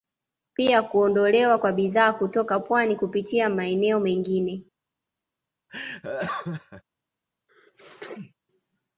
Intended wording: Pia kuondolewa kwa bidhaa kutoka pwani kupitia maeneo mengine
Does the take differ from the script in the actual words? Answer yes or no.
no